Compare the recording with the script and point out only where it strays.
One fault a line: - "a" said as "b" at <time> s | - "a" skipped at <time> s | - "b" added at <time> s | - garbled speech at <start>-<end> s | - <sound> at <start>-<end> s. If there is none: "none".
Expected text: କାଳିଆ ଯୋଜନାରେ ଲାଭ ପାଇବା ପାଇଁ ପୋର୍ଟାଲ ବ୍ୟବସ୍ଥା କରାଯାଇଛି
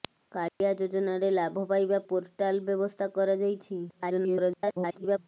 - dropout at 0.5-0.6 s
- "ପାଇଁ" skipped at 2.0 s
- garbled speech at 3.9-5.2 s